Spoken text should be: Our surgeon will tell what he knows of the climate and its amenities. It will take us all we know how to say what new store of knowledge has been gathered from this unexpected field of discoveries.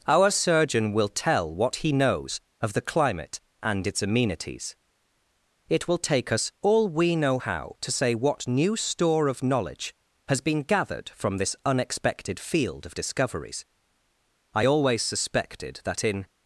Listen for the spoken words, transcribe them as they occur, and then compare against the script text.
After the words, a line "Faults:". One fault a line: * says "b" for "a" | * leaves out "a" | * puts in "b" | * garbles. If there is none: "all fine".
Our surgeon will tell what he knows of the climate and its amenities. It will take us all we know how to say what new store of knowledge has been gathered from this unexpected field of discoveries. I always suspected that in
Faults:
* puts in "I always suspected that in"